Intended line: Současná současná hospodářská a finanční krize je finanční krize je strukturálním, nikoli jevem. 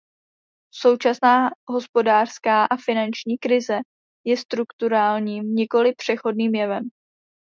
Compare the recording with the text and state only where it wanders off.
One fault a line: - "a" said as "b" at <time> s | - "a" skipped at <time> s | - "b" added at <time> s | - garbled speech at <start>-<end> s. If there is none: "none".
- "současná" skipped at 1.5 s
- "finanční krize je" skipped at 4.4 s
- "přechodným" added at 6.0 s